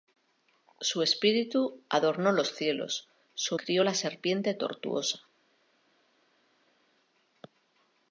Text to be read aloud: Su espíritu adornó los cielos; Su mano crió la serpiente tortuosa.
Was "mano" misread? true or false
true